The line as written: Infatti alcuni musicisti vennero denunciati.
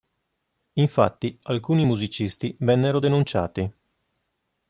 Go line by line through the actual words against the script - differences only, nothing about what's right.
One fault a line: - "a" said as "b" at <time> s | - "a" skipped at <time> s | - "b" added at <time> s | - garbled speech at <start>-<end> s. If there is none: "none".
none